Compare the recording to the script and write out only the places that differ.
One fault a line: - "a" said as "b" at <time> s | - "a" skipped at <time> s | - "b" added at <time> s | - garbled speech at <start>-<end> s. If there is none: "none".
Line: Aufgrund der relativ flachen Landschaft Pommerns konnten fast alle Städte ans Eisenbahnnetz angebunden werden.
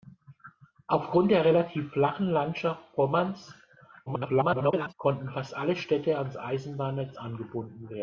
- garbled speech at 4.1-4.9 s